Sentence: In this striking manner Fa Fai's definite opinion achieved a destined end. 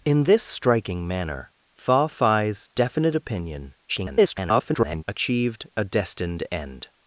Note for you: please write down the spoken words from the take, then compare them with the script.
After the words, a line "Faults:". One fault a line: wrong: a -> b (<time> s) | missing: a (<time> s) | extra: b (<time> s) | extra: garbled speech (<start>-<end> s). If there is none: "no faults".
In this striking manner Fa Fai's definite opinion [garbled] achieved a destined end.
Faults:
extra: garbled speech (3.9-5.0 s)